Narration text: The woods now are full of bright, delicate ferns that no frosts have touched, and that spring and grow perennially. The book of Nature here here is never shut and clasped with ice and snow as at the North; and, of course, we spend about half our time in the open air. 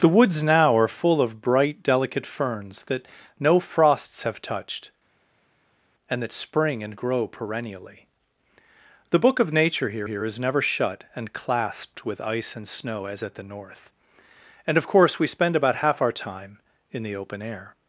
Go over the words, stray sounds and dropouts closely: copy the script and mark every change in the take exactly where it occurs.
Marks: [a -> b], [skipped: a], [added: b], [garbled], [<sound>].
The woods now are full of bright, delicate ferns that no frosts have touched, and that spring and grow perennially. The book of Nature here here is never shut and clasped with ice and snow as at the North; and, of course, we spend about half our time in the open air.